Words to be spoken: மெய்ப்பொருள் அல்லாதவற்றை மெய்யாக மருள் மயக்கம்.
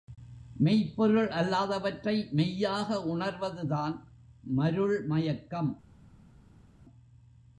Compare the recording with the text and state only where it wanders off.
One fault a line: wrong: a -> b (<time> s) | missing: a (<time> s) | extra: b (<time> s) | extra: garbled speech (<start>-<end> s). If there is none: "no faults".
extra: உணர்வதுதான் (3.0 s)